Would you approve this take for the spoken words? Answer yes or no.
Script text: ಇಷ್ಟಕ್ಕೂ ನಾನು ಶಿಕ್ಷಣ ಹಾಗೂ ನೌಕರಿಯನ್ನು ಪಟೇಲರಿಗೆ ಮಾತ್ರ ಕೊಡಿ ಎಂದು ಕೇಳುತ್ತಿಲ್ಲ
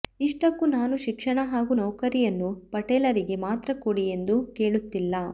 yes